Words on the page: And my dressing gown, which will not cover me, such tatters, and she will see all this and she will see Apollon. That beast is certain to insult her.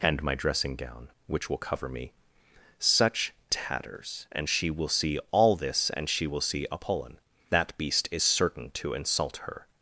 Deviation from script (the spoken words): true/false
true